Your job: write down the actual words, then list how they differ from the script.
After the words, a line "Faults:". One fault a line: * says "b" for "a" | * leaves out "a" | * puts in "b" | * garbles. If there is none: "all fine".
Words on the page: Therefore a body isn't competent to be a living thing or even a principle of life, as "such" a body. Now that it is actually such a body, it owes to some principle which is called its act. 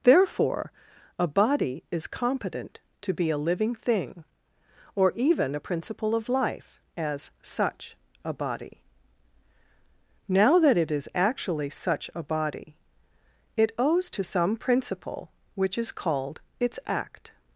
Therefore a body is competent to be a living thing or even a principle of life, as "such" a body. Now that it is actually such a body, it owes to some principle which is called its act.
Faults:
* says "is" for "isn't"